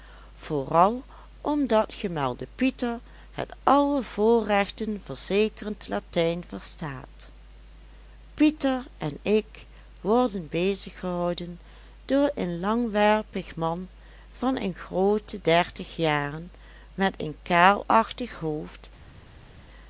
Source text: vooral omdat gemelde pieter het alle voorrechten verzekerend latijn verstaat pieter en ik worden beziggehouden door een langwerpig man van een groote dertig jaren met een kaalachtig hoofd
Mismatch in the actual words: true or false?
false